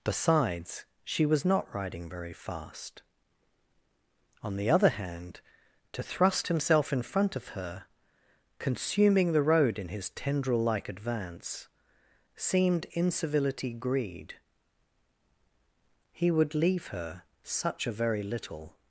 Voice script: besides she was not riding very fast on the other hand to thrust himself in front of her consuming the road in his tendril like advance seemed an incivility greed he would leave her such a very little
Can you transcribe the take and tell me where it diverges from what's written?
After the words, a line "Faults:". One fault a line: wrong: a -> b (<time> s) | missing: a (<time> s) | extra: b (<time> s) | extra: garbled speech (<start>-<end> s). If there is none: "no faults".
besides she was not riding very fast on the other hand to thrust himself in front of her consuming the road in his tendril like advance seemed incivility greed he would leave her such a very little
Faults:
missing: an (12.8 s)